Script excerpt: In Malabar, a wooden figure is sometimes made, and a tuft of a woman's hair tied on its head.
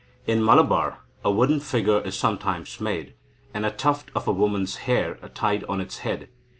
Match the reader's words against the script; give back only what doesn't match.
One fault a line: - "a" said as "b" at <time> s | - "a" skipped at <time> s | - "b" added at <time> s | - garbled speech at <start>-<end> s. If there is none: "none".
none